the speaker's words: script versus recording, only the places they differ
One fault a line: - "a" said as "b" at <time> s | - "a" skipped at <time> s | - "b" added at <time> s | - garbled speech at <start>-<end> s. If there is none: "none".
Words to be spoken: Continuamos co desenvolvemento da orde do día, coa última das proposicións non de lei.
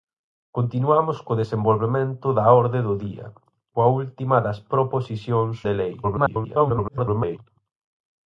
- "non" skipped at 5.6 s
- garbled speech at 6.0-7.4 s